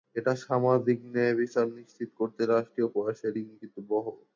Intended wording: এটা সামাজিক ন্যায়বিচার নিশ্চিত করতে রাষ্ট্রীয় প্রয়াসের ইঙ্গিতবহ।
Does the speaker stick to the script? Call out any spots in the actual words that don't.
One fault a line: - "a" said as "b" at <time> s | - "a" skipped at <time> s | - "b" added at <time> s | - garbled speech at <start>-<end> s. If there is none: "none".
none